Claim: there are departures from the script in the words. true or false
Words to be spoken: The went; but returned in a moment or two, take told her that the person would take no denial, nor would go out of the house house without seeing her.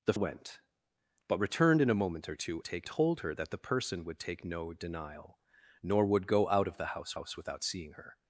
false